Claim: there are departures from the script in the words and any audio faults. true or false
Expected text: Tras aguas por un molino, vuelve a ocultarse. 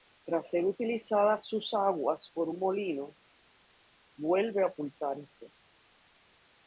true